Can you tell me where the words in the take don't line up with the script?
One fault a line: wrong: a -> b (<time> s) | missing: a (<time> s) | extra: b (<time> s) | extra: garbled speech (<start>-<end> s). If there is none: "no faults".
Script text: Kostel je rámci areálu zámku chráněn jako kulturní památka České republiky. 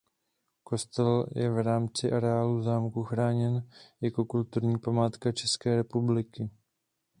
extra: v (1.5 s)